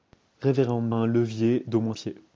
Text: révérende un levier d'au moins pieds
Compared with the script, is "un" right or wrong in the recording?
right